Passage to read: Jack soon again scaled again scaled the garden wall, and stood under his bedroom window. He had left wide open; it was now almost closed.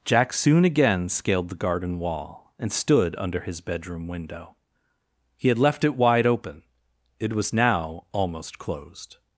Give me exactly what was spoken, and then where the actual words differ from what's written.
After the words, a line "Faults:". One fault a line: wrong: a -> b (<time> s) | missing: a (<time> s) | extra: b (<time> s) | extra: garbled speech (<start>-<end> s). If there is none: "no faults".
Jack soon again scaled the garden wall, and stood under his bedroom window. He had left it wide open; it was now almost closed.
Faults:
missing: again scaled (1.5 s)
extra: it (5.8 s)